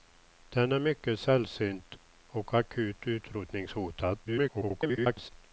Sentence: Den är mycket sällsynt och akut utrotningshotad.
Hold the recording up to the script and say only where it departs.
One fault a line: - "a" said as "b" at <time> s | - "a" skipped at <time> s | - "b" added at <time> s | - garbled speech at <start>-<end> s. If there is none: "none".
- garbled speech at 4.2-5.3 s